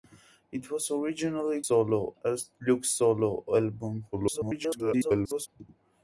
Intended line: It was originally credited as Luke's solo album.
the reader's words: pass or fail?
fail